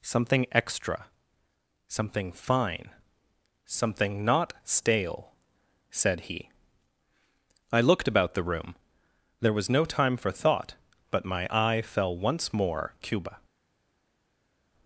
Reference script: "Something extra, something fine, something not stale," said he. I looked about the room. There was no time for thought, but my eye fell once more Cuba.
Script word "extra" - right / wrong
right